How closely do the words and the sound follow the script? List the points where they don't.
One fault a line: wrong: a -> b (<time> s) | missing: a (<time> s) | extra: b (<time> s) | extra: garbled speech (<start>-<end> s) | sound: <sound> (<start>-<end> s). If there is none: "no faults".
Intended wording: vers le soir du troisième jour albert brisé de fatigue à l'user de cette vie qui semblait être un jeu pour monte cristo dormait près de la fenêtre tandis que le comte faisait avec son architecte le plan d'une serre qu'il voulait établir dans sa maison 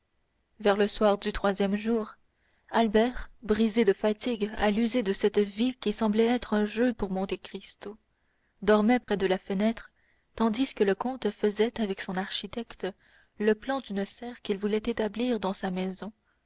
sound: dropout (9.0-9.1 s)